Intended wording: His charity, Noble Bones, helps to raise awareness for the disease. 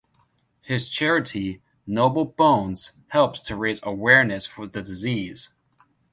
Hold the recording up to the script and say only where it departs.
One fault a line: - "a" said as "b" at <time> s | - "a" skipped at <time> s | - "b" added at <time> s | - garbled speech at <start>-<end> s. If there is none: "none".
none